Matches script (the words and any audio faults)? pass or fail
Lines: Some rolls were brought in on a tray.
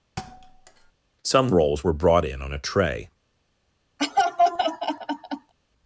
fail